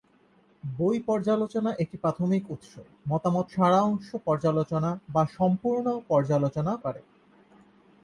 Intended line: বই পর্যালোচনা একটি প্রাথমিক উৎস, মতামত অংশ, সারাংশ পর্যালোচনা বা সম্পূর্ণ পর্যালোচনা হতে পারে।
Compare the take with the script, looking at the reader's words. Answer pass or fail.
fail